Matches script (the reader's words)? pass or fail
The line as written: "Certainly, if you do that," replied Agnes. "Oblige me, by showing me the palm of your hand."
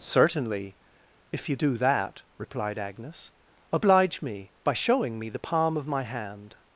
fail